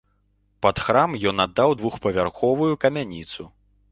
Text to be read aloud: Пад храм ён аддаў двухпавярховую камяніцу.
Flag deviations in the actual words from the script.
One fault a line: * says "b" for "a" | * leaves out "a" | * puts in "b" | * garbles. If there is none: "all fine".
all fine